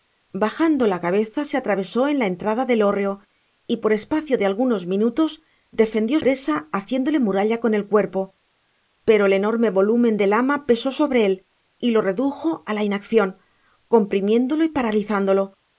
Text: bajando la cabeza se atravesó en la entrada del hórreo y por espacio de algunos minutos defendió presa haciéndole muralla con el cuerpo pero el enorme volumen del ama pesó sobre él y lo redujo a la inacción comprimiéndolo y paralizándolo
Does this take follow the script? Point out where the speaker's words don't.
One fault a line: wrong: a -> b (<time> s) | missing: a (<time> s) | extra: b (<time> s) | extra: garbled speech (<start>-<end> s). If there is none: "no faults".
no faults